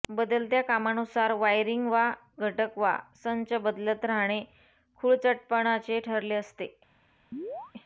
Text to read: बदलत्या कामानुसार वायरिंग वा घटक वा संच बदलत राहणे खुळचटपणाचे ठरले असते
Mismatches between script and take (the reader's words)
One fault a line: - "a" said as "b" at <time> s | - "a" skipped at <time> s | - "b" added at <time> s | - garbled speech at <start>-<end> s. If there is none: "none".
none